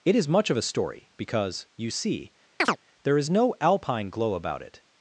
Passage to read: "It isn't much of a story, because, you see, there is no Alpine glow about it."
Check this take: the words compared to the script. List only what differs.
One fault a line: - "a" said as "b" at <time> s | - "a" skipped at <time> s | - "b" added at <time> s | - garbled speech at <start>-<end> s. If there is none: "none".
- "isn't" said as "is" at 0.1 s